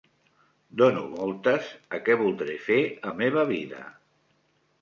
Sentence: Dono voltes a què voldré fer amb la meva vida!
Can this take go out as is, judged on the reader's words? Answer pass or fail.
fail